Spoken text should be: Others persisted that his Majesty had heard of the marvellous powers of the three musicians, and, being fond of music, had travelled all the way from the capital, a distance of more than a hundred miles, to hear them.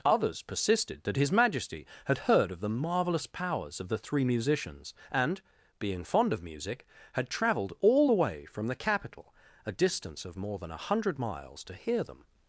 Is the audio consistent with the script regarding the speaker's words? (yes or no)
yes